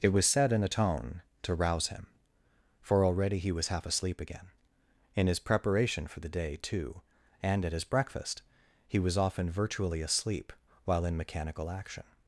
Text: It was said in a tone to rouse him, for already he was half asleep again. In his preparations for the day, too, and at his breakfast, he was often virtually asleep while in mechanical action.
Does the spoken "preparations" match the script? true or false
false